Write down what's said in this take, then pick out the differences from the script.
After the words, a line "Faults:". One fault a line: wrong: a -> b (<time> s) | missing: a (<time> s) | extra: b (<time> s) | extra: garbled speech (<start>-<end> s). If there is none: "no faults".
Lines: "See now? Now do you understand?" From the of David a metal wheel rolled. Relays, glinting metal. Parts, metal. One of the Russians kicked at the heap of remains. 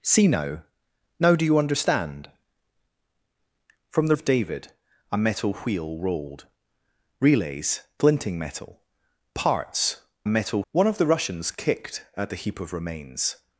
"See now? Now do you understand?" From the of David a metal wheel rolled. Relays, glinting metal. Parts, metal. One of the Russians kicked at the heap of remains.
Faults:
no faults